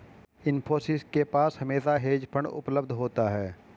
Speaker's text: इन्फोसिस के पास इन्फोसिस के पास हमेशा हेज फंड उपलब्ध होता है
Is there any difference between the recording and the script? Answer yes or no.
yes